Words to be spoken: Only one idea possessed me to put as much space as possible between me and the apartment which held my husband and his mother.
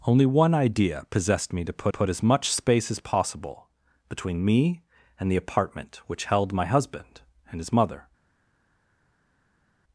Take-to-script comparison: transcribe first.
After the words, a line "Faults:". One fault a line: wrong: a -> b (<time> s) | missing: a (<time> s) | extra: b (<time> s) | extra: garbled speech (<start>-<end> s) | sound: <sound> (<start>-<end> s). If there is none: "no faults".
Only one idea possessed me to put put as much space as possible between me and the apartment which held my husband and his mother.
Faults:
extra: put (1.9 s)